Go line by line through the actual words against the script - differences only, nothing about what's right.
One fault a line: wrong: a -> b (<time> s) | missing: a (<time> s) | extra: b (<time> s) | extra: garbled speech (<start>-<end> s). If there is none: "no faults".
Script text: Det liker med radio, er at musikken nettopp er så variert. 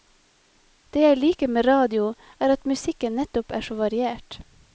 extra: jeg (1.0 s)